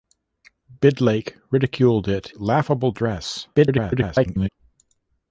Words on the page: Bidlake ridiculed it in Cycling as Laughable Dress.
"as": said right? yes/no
no